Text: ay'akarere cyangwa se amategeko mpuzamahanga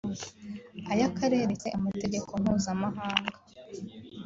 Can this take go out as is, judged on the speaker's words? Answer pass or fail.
fail